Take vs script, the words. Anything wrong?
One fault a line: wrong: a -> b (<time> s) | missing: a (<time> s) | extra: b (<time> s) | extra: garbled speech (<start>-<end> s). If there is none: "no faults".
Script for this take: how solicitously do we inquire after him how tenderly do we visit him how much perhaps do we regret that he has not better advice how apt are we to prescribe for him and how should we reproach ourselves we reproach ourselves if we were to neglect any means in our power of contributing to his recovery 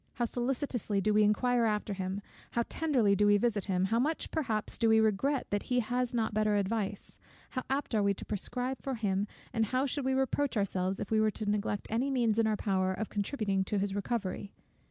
missing: we reproach ourselves (11.0 s)